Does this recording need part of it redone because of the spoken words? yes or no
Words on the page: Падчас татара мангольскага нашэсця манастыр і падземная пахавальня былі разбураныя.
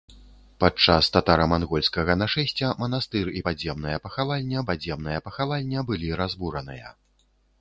yes